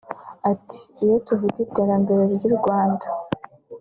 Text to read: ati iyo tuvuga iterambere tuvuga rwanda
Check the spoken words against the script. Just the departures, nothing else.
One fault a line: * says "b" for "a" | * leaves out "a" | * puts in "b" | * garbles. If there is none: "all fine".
* says "ry'u" for "tuvuga"